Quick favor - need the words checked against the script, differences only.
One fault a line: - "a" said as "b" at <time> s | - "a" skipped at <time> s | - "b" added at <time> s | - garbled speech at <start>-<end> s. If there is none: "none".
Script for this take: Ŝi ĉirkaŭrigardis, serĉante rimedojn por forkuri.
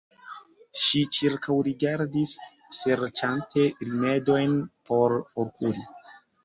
none